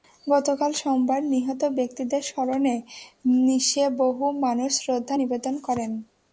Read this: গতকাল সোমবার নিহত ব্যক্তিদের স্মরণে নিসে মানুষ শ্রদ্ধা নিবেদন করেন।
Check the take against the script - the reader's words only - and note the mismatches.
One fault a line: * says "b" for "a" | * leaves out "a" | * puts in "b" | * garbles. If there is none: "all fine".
* puts in "বহু"